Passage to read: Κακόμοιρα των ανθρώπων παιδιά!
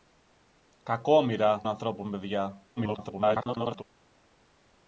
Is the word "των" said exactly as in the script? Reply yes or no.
no